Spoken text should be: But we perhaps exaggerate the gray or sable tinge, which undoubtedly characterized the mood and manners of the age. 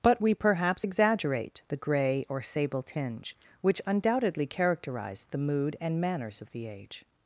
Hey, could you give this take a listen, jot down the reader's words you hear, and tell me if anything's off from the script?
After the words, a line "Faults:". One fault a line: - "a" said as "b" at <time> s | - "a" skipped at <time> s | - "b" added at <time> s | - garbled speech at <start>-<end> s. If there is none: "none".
But we perhaps exaggerate the gray or sable tinge, which undoubtedly characterized the mood and manners of the age.
Faults:
none